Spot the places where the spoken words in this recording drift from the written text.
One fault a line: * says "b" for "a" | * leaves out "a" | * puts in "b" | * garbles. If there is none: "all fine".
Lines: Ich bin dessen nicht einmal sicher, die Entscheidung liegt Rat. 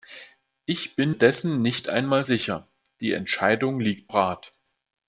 all fine